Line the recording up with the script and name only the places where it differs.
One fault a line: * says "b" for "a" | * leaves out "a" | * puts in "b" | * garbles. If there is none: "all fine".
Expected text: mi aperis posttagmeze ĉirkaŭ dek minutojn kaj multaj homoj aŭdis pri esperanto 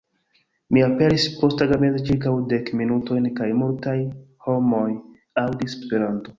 * leaves out "pri"